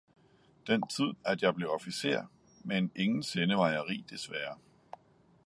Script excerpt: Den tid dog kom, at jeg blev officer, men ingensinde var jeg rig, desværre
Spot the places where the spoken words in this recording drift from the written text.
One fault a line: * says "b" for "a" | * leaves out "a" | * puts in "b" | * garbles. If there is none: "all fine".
* leaves out "dog kom"